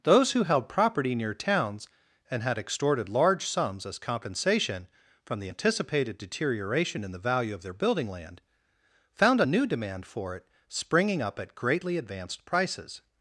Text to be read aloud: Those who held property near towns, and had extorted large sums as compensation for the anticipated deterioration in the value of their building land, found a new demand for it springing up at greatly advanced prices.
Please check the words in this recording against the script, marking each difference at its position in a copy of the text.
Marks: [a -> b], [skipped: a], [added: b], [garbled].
Those who held property near towns, and had extorted large sums as compensation [for -> from] the anticipated deterioration in the value of their building land, found a new demand for it springing up at greatly advanced prices.